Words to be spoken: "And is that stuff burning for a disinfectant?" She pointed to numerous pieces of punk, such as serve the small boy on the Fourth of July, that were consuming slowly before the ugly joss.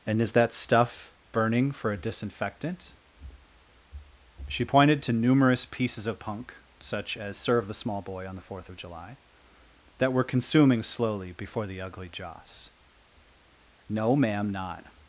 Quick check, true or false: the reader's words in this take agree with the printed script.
false